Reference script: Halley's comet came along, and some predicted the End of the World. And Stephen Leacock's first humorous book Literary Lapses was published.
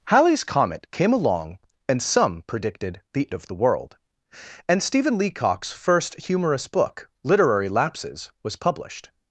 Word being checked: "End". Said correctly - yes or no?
no